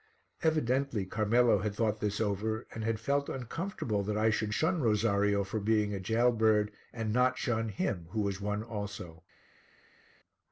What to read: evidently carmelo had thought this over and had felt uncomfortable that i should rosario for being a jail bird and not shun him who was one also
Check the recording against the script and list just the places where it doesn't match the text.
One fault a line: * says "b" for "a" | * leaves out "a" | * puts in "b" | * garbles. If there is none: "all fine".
* puts in "shun"